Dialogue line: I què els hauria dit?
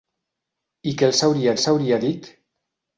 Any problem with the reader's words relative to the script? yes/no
yes